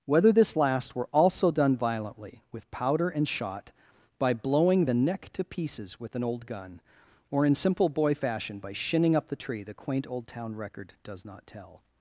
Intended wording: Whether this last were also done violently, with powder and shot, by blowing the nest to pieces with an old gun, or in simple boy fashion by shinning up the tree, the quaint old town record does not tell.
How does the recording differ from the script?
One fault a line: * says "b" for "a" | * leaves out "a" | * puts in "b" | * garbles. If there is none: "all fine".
* says "neck" for "nest"